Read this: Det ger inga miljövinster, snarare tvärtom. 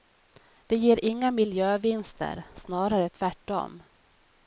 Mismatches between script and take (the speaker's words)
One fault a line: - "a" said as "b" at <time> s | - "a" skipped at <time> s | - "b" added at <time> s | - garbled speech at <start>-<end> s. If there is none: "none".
none